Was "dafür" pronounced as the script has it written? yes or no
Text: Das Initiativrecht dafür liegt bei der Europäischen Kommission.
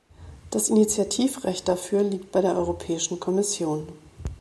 yes